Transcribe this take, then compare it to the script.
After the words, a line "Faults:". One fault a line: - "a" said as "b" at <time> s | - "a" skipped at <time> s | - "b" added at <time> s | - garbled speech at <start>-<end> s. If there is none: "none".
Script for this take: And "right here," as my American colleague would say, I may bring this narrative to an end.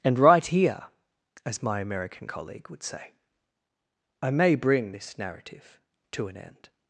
And "right here," as my American colleague would say, I may bring this narrative to an end.
Faults:
none